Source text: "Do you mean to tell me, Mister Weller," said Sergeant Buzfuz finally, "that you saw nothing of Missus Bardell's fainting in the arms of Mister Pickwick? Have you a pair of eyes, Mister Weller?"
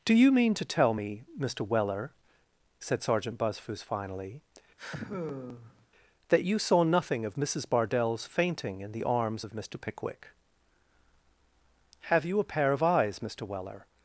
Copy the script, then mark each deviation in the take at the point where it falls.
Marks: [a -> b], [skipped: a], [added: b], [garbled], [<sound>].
"Do you mean to tell me, Mister Weller," said Sergeant Buzfuz finally, [sigh] "that you saw nothing of Missus Bardell's fainting in the arms of Mister Pickwick? Have you a pair of eyes, Mister Weller?"